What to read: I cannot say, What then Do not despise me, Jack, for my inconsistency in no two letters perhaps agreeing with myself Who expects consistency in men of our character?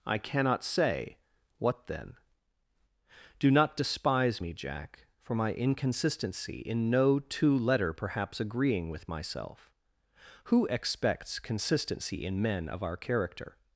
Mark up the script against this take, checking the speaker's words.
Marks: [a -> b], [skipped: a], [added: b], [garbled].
I cannot say, What then Do not despise me, Jack, for my inconsistency in no two [letters -> letter] perhaps agreeing with myself Who expects consistency in men of our character?